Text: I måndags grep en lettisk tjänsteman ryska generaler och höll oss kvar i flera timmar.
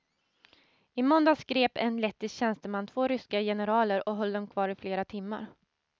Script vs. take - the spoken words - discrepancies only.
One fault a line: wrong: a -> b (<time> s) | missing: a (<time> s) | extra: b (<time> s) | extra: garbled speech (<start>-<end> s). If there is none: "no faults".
extra: två (2.9 s)
wrong: oss -> dem (4.3 s)